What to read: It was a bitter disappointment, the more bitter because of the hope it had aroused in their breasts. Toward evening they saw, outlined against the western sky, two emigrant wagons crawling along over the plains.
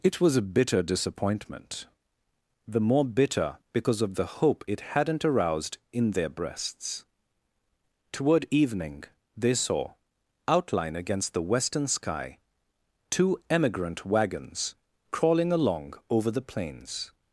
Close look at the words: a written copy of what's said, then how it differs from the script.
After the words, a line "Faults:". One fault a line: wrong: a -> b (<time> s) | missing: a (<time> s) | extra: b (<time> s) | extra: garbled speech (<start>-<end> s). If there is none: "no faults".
It was a bitter disappointment, the more bitter because of the hope it hadn't aroused in their breasts. Toward evening they saw, outline against the western sky, two emigrant wagons crawling along over the plains.
Faults:
wrong: had -> hadn't (5.0 s)
wrong: outlined -> outline (10.5 s)